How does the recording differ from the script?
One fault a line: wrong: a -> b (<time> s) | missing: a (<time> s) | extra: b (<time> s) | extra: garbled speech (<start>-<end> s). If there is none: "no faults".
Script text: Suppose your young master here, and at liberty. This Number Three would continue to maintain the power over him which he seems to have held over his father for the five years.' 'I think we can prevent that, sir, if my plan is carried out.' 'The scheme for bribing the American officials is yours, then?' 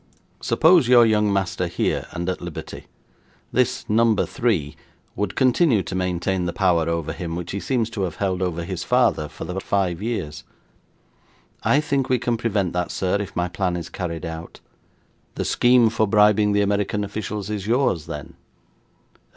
no faults